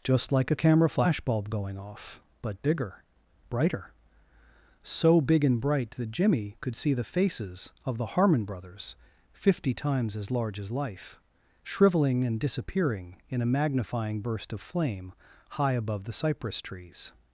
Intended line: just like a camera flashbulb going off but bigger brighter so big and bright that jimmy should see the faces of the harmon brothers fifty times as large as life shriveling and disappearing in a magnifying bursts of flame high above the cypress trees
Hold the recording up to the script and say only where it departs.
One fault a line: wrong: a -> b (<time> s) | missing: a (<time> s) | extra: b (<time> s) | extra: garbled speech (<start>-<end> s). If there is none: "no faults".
wrong: should -> could (6.6 s)
wrong: bursts -> burst (14.2 s)